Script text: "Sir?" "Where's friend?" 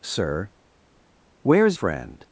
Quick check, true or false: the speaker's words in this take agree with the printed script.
true